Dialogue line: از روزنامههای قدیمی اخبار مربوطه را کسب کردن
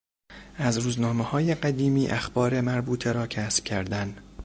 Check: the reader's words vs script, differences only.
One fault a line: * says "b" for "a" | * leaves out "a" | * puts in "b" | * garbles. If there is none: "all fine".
all fine